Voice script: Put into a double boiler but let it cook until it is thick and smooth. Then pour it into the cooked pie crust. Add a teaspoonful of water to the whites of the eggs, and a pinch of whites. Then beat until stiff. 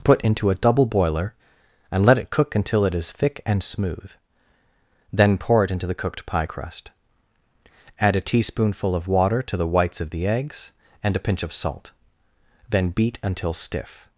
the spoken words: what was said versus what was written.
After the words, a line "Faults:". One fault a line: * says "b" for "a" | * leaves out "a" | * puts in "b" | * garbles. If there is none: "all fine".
Put into a double boiler and let it cook until it is thick and smooth. Then pour it into the cooked pie crust. Add a teaspoonful of water to the whites of the eggs, and a pinch of salt. Then beat until stiff.
Faults:
* says "and" for "but"
* says "salt" for "whites"